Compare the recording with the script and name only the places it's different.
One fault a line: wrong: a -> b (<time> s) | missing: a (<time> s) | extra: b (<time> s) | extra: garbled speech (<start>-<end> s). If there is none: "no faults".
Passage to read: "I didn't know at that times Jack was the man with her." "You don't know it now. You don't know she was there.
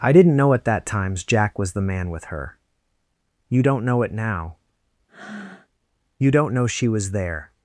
no faults